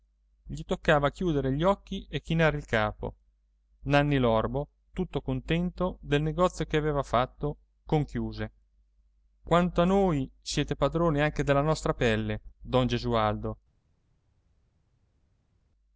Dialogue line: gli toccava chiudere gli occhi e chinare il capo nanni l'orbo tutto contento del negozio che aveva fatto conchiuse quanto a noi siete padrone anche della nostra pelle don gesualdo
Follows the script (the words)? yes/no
yes